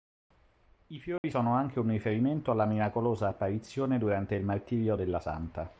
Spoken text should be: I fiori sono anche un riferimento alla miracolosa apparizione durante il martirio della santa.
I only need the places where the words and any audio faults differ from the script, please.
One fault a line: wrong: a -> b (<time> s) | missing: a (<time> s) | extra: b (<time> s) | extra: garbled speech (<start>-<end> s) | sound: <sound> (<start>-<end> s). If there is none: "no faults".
sound: dropout (1.2-1.2 s)